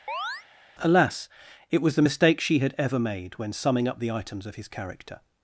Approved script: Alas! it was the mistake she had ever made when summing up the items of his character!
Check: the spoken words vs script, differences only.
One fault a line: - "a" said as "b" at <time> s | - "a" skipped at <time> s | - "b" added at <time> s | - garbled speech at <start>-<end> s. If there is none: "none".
none